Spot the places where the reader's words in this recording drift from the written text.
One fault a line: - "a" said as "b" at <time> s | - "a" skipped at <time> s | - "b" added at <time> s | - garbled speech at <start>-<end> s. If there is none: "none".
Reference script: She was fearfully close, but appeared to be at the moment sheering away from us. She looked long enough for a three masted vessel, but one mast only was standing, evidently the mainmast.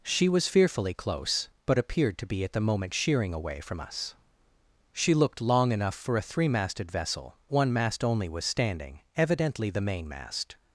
- "but" skipped at 7.4 s